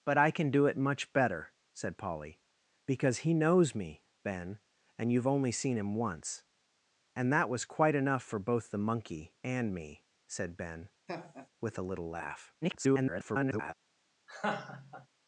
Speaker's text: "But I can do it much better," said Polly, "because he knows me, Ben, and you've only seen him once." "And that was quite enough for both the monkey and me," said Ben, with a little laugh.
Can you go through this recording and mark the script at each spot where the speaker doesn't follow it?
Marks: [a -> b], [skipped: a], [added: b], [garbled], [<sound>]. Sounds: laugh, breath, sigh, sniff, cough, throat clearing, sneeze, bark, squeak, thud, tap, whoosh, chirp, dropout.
"But I can do it much better," said Polly, "because he knows me, Ben, and you've only seen him once." "And that was quite enough for both the monkey and me," said Ben, [laugh] with a little laugh. [garbled] [laugh]